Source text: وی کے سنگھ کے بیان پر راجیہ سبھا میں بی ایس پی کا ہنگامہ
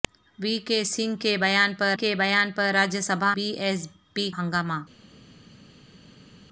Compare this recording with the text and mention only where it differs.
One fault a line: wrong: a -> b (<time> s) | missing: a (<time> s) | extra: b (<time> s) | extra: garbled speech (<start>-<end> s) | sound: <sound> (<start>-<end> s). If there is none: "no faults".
extra: کے بیان پر (2.0 s)
missing: میں (3.3 s)
missing: کا (4.3 s)